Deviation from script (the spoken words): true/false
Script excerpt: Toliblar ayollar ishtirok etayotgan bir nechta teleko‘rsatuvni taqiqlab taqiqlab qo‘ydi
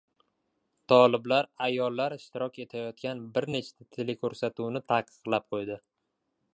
true